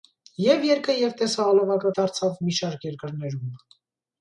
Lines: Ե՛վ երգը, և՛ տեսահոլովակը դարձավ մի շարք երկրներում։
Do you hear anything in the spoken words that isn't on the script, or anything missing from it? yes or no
no